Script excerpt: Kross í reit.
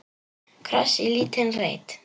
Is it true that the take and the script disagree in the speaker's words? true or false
true